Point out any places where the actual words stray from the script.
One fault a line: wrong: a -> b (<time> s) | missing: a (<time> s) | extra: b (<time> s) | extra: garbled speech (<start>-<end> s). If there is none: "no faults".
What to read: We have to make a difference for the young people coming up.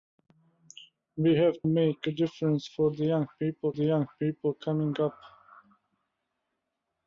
missing: to (1.6 s)
extra: the young people (3.7 s)